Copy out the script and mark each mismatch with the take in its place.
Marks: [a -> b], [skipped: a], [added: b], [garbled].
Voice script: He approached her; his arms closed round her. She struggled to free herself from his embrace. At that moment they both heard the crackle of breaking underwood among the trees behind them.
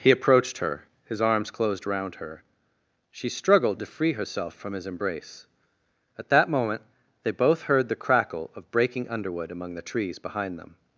He approached her; his arms closed round her. She struggled to free herself from his embrace. At that moment they both heard the crackle of breaking underwood among the trees behind them.